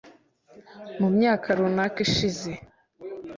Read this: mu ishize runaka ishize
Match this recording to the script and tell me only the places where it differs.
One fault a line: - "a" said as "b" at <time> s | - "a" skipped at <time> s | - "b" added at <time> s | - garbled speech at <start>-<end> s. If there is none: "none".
- "ishize" said as "myaka" at 1.2 s